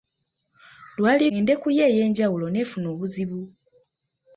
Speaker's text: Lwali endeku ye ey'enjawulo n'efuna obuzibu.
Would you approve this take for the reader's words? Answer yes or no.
yes